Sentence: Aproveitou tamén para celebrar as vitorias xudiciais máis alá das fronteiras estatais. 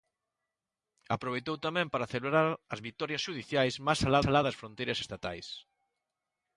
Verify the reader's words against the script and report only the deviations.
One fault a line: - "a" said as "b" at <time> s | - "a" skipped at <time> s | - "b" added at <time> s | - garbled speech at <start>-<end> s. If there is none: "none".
- "alá" added at 4.3 s